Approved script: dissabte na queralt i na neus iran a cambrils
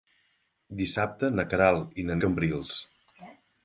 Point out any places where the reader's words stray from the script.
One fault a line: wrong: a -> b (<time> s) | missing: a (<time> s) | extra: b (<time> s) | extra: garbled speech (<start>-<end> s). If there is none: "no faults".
missing: neus iran (2.2 s)